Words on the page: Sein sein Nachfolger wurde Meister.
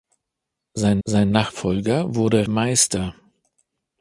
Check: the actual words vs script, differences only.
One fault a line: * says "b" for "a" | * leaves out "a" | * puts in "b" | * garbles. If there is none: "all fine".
all fine